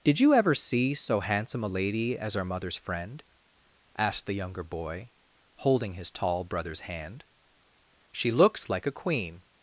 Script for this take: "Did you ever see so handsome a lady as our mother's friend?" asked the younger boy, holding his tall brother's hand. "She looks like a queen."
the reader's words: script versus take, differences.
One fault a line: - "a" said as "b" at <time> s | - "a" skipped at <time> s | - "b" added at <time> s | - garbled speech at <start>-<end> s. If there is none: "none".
none